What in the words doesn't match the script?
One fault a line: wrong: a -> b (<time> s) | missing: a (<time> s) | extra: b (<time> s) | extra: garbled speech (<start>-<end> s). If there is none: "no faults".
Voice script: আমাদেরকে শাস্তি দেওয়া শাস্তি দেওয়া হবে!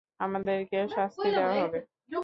missing: শাস্তি দেওয়া (1.5 s)